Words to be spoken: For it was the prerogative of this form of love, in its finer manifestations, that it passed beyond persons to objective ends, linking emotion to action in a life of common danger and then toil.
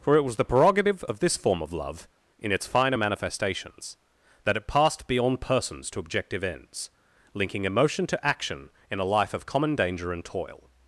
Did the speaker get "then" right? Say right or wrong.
wrong